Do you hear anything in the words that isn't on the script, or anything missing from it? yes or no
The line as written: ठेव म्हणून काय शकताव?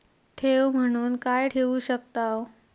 yes